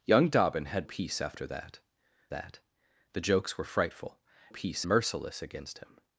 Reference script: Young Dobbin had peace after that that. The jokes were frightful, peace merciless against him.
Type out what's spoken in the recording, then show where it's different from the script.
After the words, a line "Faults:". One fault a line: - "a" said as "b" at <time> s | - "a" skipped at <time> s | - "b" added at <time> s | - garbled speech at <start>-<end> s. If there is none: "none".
Young Dobbin had peace after that that. The jokes were frightful, peace merciless against him.
Faults:
none